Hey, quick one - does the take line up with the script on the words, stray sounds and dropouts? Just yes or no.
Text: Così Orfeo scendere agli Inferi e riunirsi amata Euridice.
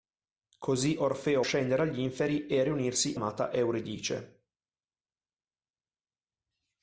yes